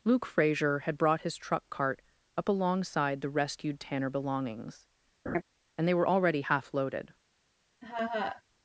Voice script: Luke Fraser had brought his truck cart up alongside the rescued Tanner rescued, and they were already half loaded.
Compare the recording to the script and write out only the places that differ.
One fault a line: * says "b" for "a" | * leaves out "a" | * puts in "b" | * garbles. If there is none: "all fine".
* says "belongings" for "rescued"